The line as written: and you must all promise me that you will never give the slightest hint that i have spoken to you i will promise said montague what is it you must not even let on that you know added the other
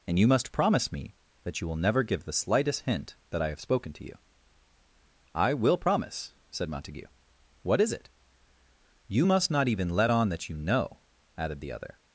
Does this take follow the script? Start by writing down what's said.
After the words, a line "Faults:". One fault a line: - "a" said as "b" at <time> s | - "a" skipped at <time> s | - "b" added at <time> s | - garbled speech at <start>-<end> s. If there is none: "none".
and you must promise me that you will never give the slightest hint that i have spoken to you i will promise said montague what is it you must not even let on that you know added the other
Faults:
- "all" skipped at 0.5 s